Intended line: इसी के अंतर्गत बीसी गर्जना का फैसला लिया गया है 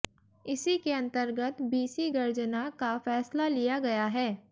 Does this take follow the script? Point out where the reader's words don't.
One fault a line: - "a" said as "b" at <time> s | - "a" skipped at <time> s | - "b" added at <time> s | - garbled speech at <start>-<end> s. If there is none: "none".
none